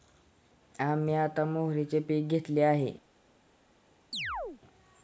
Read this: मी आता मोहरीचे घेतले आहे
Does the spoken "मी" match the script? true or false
false